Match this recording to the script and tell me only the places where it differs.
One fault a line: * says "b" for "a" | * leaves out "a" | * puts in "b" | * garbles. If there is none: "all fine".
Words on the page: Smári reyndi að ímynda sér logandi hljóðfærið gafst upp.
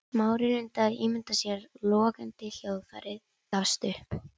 all fine